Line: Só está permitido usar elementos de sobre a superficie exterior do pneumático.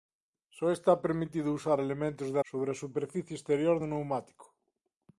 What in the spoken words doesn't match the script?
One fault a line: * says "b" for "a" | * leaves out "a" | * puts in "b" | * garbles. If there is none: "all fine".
all fine